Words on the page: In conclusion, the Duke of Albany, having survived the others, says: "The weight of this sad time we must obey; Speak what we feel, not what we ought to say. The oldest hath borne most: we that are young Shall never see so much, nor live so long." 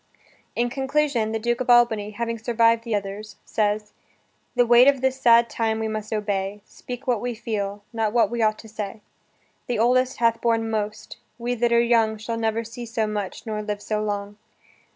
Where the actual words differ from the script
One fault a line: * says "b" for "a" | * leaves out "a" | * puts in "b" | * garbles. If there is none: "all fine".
all fine